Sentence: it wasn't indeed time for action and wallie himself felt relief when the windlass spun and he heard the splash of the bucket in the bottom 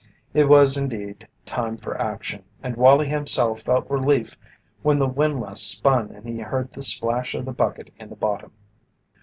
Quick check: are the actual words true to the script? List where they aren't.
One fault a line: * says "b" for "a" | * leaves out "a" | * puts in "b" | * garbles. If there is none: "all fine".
* says "was" for "wasn't"